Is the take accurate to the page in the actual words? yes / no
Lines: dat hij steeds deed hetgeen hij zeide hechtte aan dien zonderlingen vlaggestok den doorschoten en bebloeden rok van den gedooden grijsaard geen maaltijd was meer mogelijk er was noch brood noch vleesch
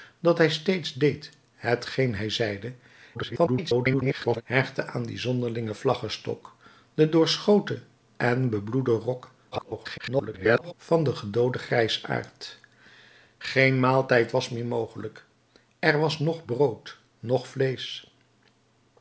no